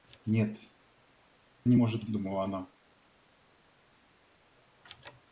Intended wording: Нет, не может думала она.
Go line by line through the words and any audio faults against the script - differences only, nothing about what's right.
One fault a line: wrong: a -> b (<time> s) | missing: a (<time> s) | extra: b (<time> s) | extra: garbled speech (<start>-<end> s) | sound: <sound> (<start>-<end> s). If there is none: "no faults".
no faults